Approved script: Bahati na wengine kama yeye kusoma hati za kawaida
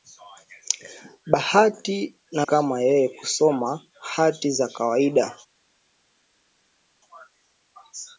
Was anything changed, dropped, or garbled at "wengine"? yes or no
yes